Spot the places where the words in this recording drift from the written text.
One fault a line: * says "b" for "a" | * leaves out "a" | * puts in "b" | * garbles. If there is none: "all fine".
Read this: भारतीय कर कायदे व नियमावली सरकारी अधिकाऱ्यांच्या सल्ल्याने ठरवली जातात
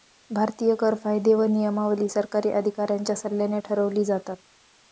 all fine